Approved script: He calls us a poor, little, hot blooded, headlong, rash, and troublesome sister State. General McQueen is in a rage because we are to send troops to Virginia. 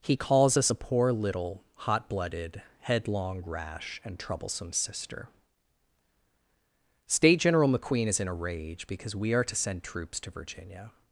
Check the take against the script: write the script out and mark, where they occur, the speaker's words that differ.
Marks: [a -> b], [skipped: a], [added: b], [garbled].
He calls us a poor, little, hot blooded, headlong, rash, and troublesome sister State. General McQueen is in a rage because we are to send troops to Virginia.